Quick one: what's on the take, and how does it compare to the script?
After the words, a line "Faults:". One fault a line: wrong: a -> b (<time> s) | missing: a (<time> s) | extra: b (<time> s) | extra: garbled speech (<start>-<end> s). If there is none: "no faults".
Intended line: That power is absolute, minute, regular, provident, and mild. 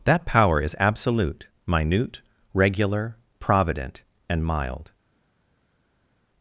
That power is absolute, minute, regular, provident, and mild.
Faults:
no faults